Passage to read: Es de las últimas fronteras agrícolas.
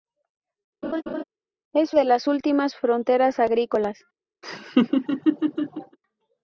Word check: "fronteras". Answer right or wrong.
right